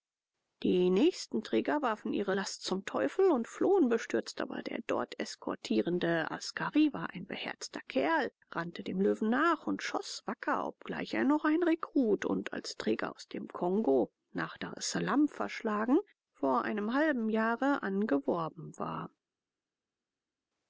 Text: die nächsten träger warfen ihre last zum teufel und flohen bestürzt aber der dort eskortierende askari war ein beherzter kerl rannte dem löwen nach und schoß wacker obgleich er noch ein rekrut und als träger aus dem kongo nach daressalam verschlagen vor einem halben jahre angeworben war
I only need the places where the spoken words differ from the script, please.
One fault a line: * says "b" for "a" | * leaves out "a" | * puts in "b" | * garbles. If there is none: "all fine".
all fine